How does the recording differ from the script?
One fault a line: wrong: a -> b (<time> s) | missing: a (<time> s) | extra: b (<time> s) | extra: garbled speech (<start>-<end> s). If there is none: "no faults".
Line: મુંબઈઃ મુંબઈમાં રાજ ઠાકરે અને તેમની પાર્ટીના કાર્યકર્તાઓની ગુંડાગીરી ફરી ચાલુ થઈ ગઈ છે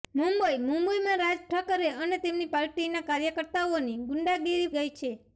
missing: ફરી ચાલુ થઈ (4.7 s)